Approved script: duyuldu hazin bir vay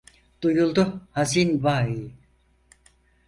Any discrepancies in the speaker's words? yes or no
yes